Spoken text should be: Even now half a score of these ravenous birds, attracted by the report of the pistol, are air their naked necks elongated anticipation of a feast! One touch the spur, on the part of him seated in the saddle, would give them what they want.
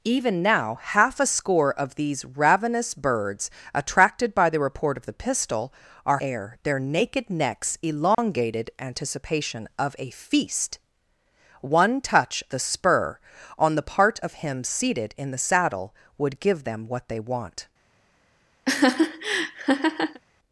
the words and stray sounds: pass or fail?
fail